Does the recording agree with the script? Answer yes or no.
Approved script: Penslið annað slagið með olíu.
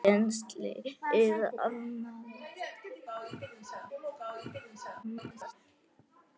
no